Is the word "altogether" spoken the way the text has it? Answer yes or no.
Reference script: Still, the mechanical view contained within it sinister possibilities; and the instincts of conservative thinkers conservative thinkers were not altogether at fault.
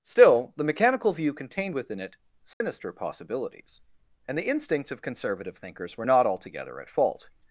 yes